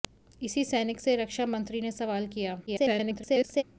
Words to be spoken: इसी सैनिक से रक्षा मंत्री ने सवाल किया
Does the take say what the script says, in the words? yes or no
no